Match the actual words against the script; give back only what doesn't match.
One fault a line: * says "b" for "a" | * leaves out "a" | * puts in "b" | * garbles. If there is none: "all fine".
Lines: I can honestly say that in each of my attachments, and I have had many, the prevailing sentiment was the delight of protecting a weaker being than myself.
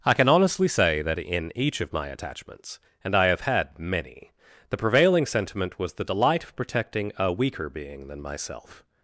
all fine